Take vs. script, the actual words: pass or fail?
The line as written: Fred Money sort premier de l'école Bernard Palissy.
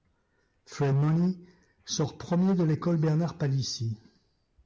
pass